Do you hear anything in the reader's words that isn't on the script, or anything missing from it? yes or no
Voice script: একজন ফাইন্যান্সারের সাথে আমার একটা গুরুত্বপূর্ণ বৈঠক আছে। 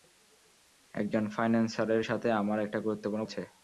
yes